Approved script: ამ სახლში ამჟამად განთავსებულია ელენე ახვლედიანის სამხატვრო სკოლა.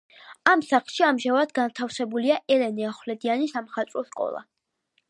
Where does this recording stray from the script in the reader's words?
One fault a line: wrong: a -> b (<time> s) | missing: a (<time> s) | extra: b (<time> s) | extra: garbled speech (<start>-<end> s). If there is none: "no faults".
no faults